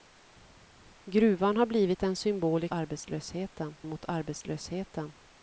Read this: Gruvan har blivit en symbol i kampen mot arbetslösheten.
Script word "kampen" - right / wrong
wrong